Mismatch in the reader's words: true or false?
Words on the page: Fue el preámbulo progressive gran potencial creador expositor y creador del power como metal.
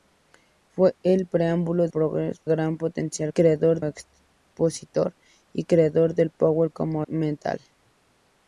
false